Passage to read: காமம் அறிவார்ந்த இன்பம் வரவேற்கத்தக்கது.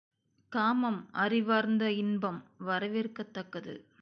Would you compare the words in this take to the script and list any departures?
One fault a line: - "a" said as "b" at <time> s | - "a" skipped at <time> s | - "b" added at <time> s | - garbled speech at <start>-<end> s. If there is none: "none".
none